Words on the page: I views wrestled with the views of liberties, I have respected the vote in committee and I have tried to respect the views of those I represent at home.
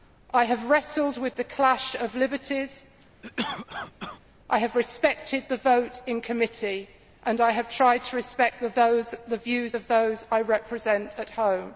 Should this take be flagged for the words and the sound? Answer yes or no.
yes